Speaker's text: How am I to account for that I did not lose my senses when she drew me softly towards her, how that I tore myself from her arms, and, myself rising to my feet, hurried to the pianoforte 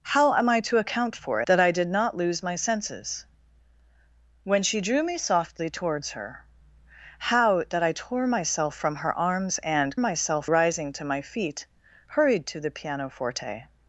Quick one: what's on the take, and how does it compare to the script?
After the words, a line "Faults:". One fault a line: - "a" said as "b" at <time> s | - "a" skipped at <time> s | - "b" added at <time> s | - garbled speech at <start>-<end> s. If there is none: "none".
How am I to account for that I did not lose my senses when she drew me softly towards her, how that I tore myself from her arms, and, myself rising to my feet, hurried to the pianoforte
Faults:
none